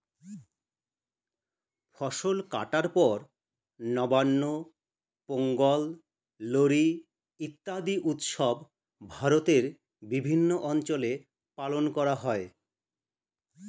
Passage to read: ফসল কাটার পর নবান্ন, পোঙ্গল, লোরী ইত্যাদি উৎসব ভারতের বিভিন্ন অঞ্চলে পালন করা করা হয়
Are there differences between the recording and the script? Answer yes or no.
yes